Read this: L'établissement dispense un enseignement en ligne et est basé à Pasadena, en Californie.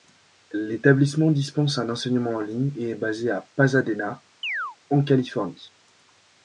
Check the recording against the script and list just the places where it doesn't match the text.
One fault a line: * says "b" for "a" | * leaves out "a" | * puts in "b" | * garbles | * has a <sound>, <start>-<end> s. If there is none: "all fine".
* has a chirp, 4.4-4.8 s